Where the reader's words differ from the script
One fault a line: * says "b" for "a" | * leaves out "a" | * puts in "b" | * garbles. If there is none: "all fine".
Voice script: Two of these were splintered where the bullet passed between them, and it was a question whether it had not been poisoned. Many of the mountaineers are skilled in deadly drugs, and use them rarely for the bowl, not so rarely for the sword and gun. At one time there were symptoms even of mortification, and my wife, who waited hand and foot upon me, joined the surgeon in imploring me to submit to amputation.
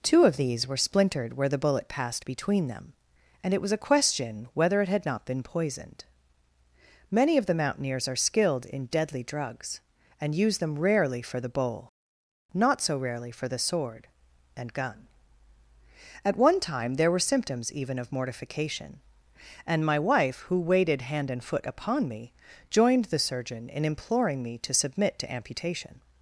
all fine